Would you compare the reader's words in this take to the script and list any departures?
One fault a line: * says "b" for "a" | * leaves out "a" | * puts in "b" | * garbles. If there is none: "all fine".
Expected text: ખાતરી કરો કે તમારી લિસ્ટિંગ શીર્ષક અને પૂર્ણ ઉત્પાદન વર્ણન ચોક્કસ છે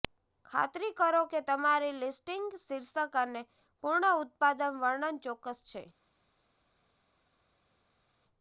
all fine